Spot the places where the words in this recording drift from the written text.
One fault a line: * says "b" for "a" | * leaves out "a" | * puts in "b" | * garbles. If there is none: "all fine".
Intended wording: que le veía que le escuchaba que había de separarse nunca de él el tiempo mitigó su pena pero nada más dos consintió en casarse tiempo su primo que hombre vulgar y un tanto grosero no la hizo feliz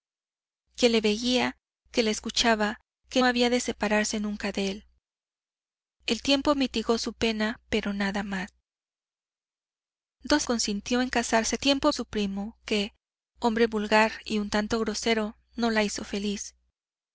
all fine